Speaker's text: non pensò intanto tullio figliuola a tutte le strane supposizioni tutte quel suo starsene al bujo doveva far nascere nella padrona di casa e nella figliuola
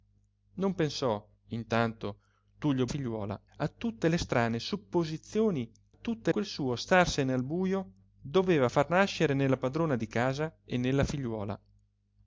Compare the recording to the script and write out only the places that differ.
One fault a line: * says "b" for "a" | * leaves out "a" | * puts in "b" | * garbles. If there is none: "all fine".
all fine